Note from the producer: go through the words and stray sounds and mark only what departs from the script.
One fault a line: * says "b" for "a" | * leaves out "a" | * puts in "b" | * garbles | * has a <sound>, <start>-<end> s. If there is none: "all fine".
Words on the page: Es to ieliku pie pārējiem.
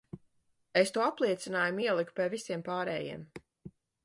* puts in "apliecinājumu"
* puts in "visiem"